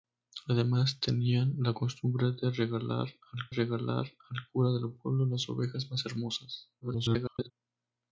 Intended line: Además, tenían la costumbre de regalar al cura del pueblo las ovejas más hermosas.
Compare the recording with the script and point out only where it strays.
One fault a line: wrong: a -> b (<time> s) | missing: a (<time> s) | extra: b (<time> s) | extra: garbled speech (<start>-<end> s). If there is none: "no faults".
extra: regalar al (3.5 s)
extra: garbled speech (6.8-7.5 s)